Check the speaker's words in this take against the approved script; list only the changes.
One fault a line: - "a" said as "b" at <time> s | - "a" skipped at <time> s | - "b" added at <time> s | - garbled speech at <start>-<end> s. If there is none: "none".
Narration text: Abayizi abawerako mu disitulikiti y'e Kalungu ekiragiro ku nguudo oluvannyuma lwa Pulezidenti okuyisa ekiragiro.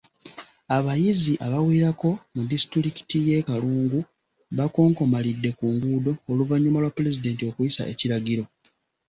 - "ekiragiro" said as "bakonkomalidde" at 4.6 s